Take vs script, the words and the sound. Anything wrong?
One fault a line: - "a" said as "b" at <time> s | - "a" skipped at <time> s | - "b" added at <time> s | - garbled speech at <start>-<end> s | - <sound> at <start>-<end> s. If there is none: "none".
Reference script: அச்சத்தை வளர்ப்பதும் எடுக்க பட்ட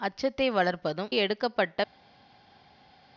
none